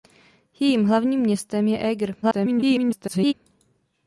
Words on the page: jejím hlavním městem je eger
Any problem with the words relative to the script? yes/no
yes